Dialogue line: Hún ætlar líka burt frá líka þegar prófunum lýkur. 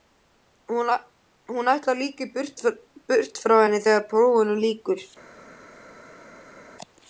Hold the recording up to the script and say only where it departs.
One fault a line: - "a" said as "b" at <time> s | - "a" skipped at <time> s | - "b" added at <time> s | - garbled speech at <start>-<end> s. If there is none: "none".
- "líka" said as "henni" at 3.6 s